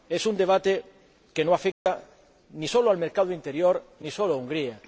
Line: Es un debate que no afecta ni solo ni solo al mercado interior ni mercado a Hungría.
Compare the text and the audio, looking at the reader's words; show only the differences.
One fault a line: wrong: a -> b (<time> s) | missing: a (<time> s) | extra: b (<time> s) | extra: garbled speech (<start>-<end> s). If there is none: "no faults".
missing: ni solo (2.9 s)
wrong: mercado -> solo (4.1 s)